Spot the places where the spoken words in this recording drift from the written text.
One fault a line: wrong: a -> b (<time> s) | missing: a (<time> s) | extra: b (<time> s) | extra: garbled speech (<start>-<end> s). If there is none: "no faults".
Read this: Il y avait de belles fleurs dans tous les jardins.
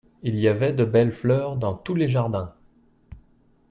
no faults